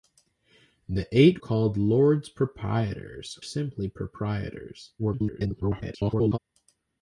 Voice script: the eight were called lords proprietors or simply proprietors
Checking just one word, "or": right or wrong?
wrong